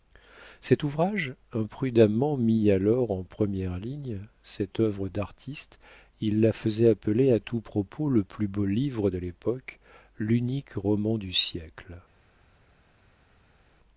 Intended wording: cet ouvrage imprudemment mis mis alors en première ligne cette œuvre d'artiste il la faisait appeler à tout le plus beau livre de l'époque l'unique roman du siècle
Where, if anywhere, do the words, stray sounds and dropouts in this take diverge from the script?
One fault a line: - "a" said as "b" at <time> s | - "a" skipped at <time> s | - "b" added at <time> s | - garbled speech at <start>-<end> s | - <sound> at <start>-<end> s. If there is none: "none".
- "mis" skipped at 2.7 s
- "propos" added at 7.6 s